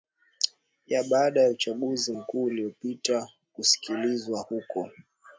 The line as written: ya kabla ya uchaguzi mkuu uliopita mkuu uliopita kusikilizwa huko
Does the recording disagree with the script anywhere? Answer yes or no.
yes